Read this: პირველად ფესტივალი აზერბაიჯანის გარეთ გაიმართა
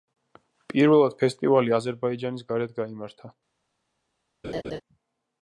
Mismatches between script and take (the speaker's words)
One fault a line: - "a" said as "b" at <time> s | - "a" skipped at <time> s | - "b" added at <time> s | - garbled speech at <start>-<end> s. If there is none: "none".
none